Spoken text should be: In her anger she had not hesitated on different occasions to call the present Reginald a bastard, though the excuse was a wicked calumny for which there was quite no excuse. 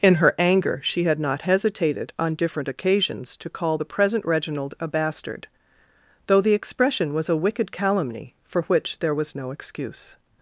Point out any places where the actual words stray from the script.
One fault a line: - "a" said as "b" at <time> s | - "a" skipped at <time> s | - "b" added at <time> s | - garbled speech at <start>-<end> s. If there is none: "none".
- "excuse" said as "expression" at 6.5 s
- "quite" skipped at 9.3 s